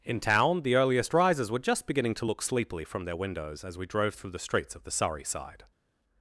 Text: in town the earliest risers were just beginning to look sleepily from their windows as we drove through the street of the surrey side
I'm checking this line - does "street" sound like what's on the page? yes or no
no